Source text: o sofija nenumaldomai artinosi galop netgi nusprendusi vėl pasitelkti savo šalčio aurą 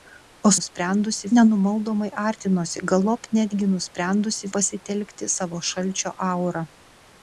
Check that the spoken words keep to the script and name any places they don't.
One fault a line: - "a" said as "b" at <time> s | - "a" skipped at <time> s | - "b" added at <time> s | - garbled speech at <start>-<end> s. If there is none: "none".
- "sofija" said as "nusprendusi" at 0.6 s
- "vėl" skipped at 4.5 s